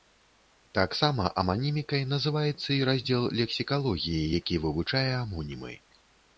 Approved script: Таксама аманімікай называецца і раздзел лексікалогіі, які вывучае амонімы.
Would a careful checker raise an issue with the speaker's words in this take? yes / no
no